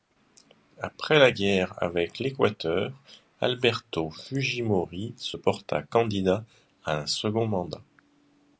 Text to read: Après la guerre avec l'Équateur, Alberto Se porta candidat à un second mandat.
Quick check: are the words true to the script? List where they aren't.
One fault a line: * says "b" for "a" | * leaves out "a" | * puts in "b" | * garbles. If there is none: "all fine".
* puts in "Fujimori"